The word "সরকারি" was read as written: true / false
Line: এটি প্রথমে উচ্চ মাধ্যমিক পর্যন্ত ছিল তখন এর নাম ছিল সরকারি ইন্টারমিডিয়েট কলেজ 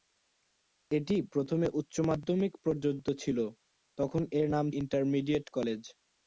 false